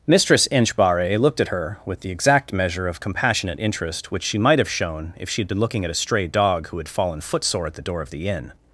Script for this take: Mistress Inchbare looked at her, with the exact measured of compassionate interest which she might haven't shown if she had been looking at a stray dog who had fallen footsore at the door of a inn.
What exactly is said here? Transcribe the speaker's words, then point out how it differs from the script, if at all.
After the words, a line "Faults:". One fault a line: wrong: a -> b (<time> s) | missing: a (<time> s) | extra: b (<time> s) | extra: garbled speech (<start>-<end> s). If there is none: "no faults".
Mistress Inchbare looked at her, with the exact measure of compassionate interest which she might have shown if she had been looking at a stray dog who had fallen footsore at the door of the inn.
Faults:
wrong: measured -> measure (2.5 s)
wrong: haven't -> have (4.6 s)
wrong: a -> the (8.1 s)